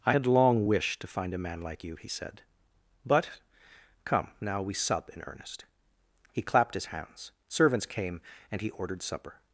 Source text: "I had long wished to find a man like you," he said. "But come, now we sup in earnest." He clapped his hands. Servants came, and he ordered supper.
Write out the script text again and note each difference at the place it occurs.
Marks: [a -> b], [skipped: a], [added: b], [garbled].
"I had long wished to find a man like you," he said. "But come, now we sup in earnest." He clapped his hands. Servants came, and he ordered supper.